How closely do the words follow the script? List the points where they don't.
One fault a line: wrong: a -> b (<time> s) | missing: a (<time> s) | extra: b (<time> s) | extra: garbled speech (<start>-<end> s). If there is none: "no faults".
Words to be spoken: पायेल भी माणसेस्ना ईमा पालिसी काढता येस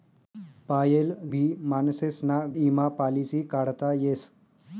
no faults